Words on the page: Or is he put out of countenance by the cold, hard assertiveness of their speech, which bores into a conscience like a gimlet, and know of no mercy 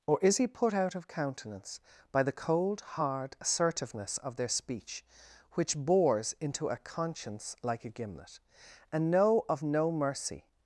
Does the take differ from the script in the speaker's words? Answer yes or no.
no